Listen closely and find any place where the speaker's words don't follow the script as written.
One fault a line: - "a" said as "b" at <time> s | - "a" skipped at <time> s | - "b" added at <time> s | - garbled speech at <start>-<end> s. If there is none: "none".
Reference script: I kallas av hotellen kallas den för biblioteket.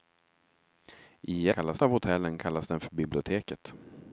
none